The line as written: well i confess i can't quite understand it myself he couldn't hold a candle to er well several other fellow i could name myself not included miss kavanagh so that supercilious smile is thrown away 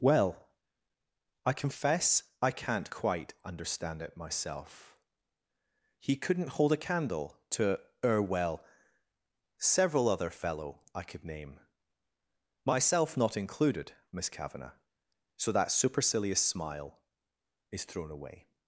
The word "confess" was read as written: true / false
true